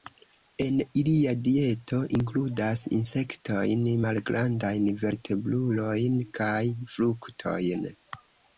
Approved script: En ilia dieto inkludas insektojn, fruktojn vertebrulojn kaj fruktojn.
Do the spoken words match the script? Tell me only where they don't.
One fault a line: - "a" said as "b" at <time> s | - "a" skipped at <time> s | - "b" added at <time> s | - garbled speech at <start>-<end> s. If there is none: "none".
- "fruktojn" said as "malgrandajn" at 4.0 s